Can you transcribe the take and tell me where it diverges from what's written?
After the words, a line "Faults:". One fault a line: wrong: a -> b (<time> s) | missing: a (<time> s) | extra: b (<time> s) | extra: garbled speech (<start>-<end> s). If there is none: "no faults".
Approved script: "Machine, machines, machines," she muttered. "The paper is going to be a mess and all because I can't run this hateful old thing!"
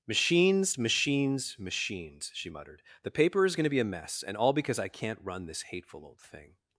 "Machines, machines, machines," she muttered. "The paper is going to be a mess and all because I can't run this hateful old thing!"
Faults:
wrong: Machine -> Machines (0.1 s)